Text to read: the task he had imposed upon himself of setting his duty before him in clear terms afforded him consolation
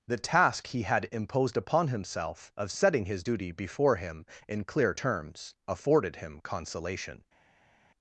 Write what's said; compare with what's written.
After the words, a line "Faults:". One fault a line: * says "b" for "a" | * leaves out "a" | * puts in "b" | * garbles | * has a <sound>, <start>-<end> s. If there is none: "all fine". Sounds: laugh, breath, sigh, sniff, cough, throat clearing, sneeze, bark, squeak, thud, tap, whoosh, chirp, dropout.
the task he had imposed upon himself of setting his duty before him in clear terms afforded him consolation
Faults:
all fine